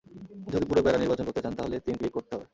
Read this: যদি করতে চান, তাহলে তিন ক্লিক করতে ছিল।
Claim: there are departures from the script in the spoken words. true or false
true